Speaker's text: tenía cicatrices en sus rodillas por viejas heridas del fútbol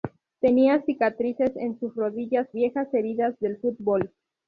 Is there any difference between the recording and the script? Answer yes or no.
yes